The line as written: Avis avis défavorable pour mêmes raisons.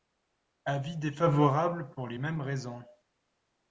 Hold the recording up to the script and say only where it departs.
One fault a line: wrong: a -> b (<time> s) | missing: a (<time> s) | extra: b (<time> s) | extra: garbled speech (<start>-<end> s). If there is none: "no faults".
missing: avis (0.9 s)
extra: les (2.1 s)